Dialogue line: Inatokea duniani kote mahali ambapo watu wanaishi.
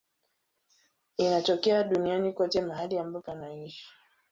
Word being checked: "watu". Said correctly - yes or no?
no